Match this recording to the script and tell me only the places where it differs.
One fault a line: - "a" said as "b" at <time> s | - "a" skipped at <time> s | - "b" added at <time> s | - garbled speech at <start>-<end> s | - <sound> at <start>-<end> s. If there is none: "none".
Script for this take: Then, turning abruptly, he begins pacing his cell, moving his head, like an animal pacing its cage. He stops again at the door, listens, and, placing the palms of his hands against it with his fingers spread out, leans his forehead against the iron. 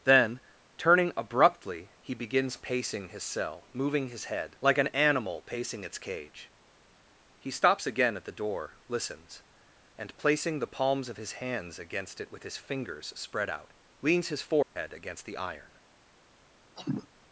- dropout at 14.6-14.8 s
- cough at 16.8-17.1 s